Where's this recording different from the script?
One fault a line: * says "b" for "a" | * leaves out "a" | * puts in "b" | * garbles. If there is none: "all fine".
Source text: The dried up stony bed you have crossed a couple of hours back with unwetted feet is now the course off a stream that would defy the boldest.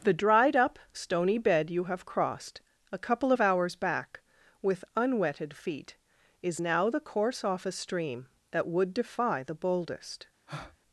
all fine